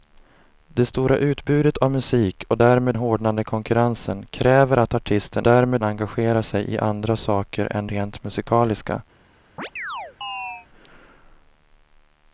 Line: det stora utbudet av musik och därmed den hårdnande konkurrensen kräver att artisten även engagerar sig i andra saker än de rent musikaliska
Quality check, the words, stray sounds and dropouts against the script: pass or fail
fail